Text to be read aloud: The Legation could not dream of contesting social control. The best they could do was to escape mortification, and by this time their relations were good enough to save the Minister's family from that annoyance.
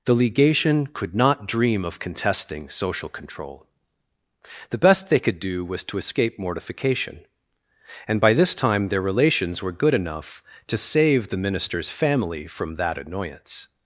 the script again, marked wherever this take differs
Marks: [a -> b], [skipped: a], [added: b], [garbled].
The Legation could not dream of contesting social control. The best they could do was to escape mortification, and by this time their relations were good enough to save the Minister's family from that annoyance.